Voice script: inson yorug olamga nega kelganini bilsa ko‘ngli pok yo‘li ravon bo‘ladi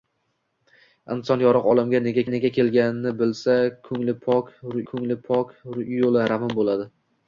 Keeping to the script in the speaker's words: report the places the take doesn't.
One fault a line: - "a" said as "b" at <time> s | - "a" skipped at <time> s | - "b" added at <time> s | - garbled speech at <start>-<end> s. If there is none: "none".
- "nega" added at 2.3 s
- "ko‘ngli pok" added at 4.9 s